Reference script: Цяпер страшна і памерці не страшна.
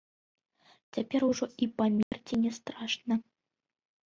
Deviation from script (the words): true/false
true